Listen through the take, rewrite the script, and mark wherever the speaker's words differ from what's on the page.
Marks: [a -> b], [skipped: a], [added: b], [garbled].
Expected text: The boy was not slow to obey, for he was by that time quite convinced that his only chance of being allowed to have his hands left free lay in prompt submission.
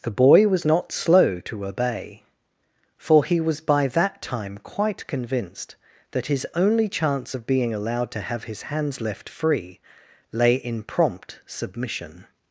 The boy was not slow to obey, for he was by that time quite convinced that his only chance of being allowed to have his hands left free lay in prompt submission.